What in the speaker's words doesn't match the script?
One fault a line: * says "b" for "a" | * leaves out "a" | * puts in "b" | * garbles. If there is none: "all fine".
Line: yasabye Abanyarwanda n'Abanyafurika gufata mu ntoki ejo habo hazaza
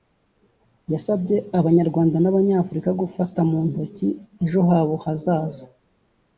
all fine